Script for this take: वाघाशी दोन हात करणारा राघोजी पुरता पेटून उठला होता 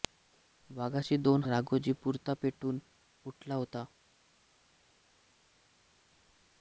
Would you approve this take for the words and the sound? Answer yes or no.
no